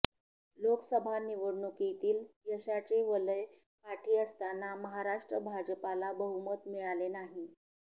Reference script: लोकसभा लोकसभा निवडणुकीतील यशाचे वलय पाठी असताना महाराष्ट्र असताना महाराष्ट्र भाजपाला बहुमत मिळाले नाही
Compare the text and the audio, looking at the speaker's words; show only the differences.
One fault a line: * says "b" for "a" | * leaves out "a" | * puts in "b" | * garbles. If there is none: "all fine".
* leaves out "लोकसभा"
* leaves out "असताना महाराष्ट्र"